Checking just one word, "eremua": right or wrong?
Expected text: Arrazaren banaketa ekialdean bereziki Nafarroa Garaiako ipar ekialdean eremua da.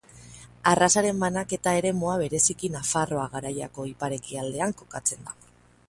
wrong